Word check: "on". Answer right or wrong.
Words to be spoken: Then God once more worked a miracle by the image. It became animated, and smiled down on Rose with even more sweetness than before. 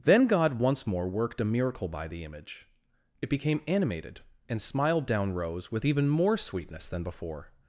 wrong